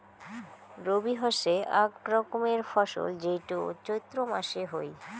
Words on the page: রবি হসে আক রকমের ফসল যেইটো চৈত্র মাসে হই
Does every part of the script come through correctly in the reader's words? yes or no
yes